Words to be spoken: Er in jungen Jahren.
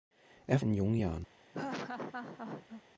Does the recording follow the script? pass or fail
pass